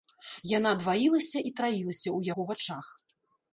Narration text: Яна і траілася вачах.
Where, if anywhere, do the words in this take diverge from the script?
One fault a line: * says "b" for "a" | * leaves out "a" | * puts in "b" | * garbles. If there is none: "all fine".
* puts in "дваілася"
* puts in "ў яго"